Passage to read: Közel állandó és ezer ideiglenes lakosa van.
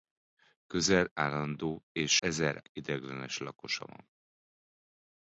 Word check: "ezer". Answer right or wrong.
right